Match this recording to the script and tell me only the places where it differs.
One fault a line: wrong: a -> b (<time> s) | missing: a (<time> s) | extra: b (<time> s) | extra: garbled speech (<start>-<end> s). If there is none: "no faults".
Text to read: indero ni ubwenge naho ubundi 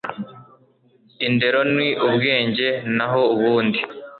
no faults